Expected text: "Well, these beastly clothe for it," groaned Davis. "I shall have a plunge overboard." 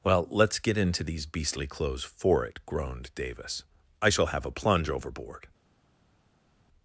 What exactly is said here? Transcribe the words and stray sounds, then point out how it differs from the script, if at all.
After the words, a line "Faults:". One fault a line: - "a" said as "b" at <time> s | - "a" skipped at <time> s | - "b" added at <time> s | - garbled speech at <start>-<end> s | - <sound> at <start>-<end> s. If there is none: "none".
"Well, let's get into these beastly clothes for it," groaned Davis. "I shall have a plunge overboard."
Faults:
- "let's get into" added at 0.3 s
- "clothe" said as "clothes" at 1.7 s